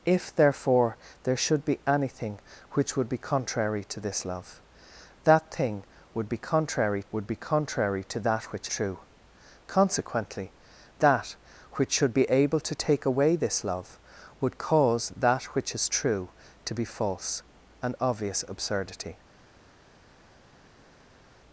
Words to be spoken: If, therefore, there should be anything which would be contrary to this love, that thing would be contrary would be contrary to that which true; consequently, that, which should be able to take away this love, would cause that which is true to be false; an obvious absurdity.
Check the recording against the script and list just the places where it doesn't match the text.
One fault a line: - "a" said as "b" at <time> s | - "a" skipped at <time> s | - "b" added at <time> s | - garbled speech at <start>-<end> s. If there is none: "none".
none